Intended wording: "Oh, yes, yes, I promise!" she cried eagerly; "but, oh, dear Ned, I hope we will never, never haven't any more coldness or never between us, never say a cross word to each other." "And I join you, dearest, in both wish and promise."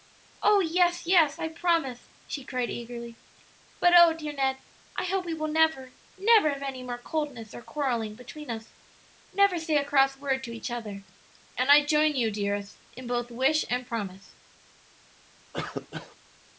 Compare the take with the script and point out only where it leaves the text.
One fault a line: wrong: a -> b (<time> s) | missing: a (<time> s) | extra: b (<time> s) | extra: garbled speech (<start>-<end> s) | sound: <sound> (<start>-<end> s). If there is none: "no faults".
wrong: haven't -> have (6.5 s)
wrong: never -> quarrelling (7.6 s)
sound: cough (15.5-16.2 s)